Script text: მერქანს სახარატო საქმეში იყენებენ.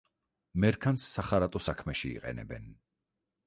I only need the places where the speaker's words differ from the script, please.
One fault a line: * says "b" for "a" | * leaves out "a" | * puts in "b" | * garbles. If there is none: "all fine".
all fine